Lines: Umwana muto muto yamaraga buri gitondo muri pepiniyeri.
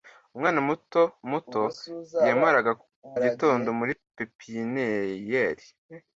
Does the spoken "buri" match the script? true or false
false